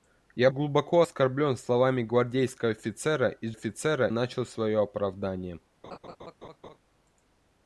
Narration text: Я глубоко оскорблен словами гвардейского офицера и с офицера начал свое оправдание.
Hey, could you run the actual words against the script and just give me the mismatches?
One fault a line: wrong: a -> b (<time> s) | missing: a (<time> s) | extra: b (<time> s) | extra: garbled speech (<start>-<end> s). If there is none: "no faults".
no faults